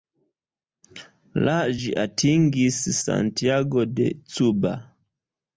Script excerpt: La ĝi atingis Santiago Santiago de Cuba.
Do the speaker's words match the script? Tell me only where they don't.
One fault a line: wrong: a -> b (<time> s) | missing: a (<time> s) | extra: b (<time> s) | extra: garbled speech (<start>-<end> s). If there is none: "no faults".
missing: Santiago (3.9 s)